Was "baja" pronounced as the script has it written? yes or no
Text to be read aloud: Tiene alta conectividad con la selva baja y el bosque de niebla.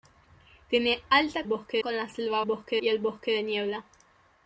no